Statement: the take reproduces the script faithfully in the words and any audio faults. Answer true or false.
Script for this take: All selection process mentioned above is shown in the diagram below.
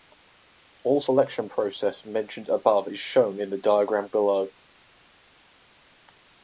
true